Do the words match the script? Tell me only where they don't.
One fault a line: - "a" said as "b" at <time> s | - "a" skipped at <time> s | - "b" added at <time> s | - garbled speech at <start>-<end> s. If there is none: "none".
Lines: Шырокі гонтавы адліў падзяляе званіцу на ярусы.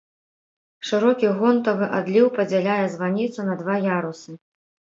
- "два" added at 3.6 s